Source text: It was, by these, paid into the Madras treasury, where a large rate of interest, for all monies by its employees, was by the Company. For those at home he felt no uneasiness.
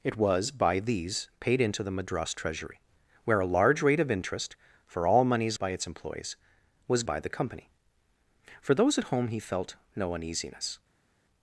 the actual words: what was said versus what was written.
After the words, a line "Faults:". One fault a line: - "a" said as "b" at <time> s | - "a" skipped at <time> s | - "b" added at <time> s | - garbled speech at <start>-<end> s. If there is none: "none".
It was, by these, paid into the Madras treasury, where a large rate of interest, for all monies by its employees, was by the Company. For those at home he felt no uneasiness.
Faults:
none